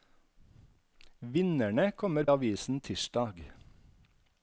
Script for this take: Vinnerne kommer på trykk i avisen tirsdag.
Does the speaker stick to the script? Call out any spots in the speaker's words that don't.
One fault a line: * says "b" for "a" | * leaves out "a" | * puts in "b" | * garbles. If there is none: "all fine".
* leaves out "på trykk i"